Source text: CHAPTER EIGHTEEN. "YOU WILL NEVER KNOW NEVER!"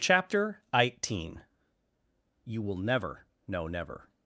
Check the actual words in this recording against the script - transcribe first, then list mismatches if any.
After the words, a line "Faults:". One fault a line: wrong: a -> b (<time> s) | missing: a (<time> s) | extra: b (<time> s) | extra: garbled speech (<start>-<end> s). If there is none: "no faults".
CHAPTER EIGHTEEN. "YOU WILL NEVER KNOW NEVER!"
Faults:
no faults